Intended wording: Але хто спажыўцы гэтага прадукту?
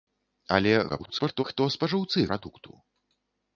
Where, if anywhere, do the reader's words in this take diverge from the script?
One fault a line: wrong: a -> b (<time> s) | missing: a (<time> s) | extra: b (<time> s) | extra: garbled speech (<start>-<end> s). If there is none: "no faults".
extra: garbled speech (0.9-1.4 s)
missing: гэтага (2.3 s)